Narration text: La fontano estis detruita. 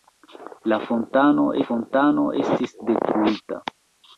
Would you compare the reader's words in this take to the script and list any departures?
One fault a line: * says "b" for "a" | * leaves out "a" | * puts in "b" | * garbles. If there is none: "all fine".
* puts in "fontano"